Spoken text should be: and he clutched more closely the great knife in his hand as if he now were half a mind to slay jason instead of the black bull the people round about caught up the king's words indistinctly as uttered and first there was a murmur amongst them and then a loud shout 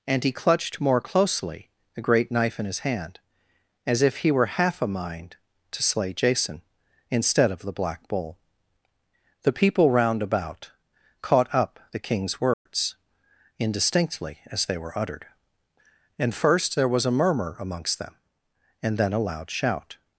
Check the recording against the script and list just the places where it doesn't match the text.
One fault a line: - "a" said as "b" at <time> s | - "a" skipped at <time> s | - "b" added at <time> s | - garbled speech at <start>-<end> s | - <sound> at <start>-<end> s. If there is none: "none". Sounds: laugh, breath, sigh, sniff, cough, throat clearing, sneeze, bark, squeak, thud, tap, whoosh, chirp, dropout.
- "now" skipped at 4.3 s
- dropout at 12.5-12.7 s
- "they were" added at 14.7 s